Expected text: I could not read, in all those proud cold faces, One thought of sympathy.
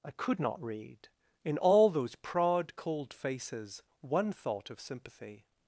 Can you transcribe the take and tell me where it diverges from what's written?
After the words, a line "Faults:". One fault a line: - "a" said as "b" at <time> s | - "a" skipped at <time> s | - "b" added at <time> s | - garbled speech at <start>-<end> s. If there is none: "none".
I could not read, in all those proud cold faces, One thought of sympathy.
Faults:
none